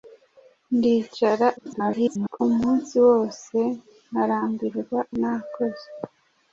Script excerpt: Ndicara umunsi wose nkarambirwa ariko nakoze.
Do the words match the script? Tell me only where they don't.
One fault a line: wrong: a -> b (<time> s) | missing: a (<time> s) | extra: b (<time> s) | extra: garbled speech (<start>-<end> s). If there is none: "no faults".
extra: garbled speech (1.6-2.4 s)
missing: ariko (5.0 s)